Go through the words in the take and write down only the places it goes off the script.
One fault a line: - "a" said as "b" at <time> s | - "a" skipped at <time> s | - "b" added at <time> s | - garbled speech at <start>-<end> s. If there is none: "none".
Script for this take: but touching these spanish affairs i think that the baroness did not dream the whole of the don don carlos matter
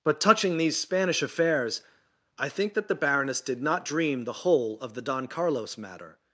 - "don" skipped at 5.3 s